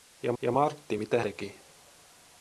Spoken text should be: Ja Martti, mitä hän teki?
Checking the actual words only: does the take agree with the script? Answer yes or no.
no